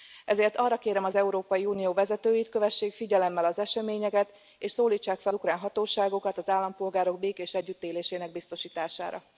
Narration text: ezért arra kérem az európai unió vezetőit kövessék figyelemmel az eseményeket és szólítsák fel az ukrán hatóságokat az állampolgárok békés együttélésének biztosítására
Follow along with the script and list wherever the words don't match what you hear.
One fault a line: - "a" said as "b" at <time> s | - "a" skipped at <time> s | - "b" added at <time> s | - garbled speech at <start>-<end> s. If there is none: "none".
- "az" skipped at 5.3 s